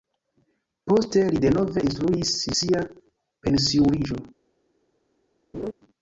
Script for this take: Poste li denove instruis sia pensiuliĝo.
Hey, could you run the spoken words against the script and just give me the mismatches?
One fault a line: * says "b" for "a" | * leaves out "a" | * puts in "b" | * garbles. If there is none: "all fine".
all fine